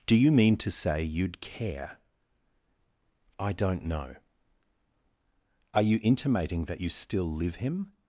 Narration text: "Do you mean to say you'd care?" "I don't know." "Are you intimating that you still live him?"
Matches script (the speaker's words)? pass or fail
pass